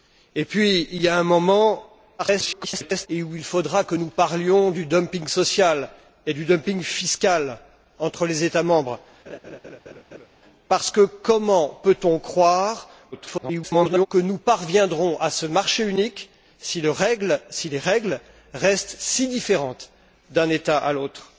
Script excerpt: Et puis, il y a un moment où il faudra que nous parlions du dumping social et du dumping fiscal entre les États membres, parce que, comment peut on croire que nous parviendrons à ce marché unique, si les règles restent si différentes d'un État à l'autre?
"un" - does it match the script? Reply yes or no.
yes